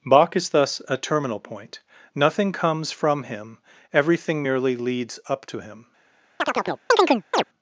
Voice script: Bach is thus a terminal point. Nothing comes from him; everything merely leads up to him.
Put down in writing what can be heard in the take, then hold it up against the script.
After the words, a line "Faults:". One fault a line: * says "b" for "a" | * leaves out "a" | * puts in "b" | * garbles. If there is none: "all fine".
Bach is thus a terminal point. Nothing comes from him; everything merely leads up to him.
Faults:
all fine